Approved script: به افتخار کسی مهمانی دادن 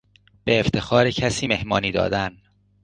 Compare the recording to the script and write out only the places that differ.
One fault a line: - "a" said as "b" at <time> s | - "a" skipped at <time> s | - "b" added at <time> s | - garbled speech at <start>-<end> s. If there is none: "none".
none